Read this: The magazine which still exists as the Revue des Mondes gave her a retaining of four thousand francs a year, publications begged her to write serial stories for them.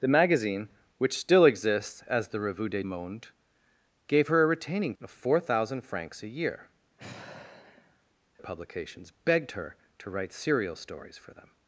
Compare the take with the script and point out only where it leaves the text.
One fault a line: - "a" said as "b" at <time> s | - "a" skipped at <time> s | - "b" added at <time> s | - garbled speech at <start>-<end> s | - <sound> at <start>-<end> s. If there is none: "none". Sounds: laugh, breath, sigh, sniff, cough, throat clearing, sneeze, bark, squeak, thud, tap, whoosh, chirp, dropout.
- sigh at 7.0-8.0 s